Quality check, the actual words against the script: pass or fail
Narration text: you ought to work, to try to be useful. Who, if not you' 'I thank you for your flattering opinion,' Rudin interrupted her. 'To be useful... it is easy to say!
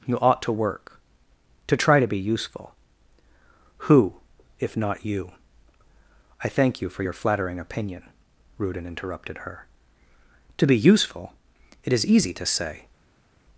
pass